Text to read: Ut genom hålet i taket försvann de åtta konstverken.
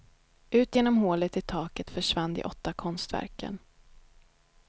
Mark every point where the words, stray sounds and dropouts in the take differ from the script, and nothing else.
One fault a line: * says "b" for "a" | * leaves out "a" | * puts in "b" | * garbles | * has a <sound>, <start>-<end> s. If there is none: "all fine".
all fine